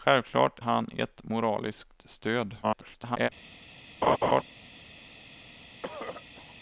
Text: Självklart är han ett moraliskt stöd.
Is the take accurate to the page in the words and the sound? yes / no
no